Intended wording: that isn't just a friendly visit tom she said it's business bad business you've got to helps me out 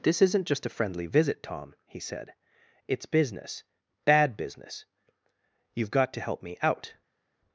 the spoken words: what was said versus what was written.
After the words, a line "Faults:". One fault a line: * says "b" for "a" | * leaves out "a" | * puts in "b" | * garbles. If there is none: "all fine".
this isn't just a friendly visit tom he said it's business bad business you've got to help me out
Faults:
* says "this" for "that"
* says "he" for "she"
* says "help" for "helps"